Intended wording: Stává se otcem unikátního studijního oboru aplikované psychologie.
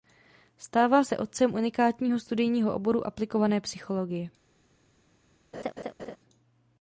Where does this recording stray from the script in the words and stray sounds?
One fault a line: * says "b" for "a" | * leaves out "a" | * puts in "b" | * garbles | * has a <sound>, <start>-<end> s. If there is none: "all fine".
* has a laugh, 5.5-6.2 s